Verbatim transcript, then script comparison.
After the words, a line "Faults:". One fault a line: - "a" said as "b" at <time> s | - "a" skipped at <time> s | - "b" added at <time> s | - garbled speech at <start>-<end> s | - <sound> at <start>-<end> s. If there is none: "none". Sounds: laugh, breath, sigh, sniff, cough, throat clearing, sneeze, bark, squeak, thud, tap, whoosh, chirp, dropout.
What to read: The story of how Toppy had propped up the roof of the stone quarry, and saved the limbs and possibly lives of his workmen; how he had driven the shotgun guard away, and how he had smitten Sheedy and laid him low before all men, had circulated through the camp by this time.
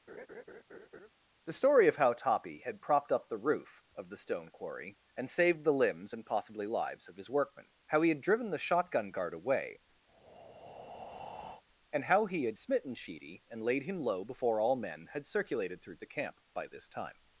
The story of how Toppy had propped up the roof of the stone quarry, and saved the limbs and possibly lives of his workmen; how he had driven the shotgun guard away, and how he had smitten Sheedy and laid him low before all men, had circulated through the camp by this time.
Faults:
- laugh at 0.1-1.1 s
- breath at 10.1-11.6 s